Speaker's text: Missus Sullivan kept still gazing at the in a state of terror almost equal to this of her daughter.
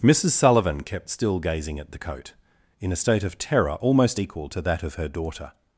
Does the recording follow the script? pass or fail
fail